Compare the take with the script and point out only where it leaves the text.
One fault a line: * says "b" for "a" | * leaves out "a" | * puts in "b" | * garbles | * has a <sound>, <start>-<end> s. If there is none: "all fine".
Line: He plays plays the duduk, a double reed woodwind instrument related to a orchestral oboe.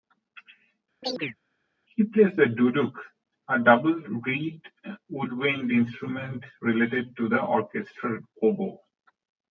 * has a chirp, 1.0-1.4 s
* leaves out "plays"
* says "the" for "a"